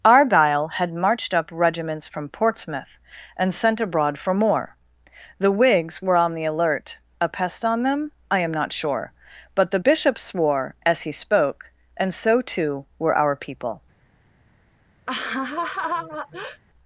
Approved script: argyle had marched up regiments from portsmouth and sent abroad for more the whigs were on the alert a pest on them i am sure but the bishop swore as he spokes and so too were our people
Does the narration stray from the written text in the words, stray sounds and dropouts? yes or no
yes